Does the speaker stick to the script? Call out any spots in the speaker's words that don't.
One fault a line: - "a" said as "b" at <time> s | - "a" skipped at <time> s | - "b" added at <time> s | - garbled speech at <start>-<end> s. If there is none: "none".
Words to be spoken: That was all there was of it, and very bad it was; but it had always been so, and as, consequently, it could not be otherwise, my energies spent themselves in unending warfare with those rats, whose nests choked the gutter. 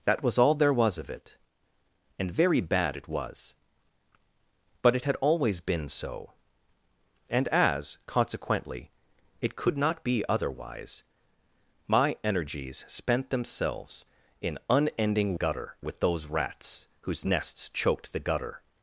- "warfare" said as "gutter" at 15.3 s